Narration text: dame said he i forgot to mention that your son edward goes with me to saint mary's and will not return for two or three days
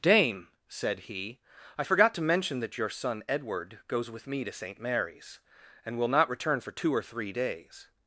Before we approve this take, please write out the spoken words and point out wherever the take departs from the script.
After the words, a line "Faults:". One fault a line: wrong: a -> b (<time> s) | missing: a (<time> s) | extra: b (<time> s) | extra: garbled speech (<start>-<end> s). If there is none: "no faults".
dame said he i forgot to mention that your son edward goes with me to saint mary's and will not return for two or three days
Faults:
no faults